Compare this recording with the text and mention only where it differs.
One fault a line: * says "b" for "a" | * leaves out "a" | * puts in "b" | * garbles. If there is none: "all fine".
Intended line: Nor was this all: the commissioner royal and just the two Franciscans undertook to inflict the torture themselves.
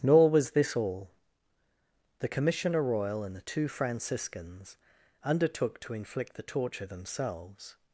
* leaves out "just"